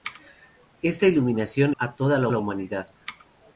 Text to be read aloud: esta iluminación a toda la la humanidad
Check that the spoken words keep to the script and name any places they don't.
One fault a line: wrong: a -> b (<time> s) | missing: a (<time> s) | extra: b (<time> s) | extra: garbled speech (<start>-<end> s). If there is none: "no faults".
no faults